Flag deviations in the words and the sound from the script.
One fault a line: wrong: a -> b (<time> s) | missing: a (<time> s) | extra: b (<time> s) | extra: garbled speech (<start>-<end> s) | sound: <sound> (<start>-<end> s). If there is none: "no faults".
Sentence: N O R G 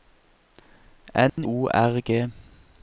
sound: dropout (1.3-1.4 s)